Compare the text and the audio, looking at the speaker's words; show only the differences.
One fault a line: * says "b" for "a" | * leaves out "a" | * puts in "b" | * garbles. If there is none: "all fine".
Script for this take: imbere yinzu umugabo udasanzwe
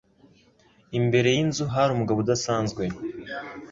* puts in "hari"